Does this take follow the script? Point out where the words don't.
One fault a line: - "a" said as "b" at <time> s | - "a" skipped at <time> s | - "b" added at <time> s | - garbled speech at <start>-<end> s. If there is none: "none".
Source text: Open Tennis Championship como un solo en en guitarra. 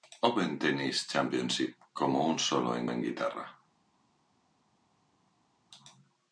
none